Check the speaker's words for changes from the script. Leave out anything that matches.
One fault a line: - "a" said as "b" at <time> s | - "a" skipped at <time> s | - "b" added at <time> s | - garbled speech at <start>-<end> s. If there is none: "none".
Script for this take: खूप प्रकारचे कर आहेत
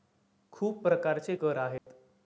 none